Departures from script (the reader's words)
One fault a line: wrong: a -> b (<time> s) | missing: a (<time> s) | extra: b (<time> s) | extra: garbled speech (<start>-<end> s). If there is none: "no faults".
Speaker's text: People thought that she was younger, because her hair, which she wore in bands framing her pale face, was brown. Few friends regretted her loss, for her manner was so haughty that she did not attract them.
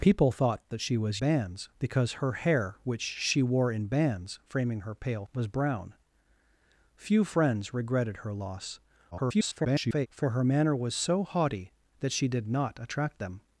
wrong: younger -> bands (1.2 s)
missing: face (5.3 s)
extra: garbled speech (9.1-10.1 s)